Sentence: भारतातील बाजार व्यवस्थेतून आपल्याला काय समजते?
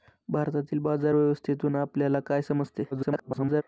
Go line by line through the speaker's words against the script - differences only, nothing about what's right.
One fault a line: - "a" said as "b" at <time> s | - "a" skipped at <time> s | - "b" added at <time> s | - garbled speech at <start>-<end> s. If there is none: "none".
- garbled speech at 2.9-3.6 s